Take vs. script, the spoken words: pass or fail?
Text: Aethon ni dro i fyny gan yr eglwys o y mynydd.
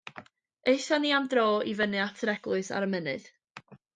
fail